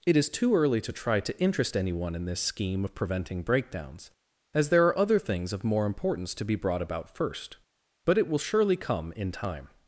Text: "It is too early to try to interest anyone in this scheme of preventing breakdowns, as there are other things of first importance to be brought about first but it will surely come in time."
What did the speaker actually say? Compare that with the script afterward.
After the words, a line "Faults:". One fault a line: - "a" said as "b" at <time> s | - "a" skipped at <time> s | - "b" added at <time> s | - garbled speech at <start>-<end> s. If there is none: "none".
"It is too early to try to interest anyone in this scheme of preventing breakdowns, as there are other things of more importance to be brought about first but it will surely come in time."
Faults:
- "first" said as "more" at 5.6 s